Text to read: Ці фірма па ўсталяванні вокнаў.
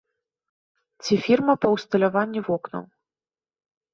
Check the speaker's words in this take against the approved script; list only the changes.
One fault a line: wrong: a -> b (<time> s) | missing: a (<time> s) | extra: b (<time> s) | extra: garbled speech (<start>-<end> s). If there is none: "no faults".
no faults